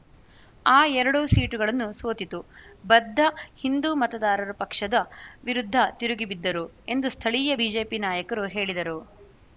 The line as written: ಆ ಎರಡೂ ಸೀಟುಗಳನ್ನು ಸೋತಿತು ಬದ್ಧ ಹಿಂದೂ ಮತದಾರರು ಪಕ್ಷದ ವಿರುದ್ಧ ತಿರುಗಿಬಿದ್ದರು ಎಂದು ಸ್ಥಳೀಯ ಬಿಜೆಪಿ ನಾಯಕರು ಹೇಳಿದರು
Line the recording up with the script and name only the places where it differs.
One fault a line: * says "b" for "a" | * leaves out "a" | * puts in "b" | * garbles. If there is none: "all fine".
all fine